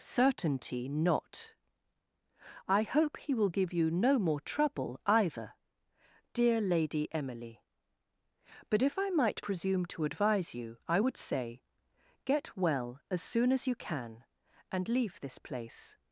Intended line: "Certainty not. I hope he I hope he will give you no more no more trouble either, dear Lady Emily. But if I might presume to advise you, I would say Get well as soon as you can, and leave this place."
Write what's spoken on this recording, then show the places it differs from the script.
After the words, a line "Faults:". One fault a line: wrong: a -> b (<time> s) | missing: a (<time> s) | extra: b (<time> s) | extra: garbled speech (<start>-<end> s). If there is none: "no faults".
"Certainty not. I hope he will give you no more trouble either, dear Lady Emily. But if I might presume to advise you, I would say Get well as soon as you can, and leave this place."
Faults:
missing: I hope he (3.4 s)
missing: no more (4.4 s)